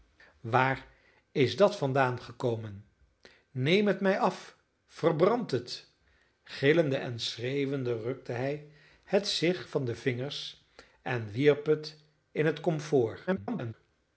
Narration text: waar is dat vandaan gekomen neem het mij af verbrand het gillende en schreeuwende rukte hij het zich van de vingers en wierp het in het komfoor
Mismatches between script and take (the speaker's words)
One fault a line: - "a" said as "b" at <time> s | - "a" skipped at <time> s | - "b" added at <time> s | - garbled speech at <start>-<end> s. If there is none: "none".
- garbled speech at 13.3-13.7 s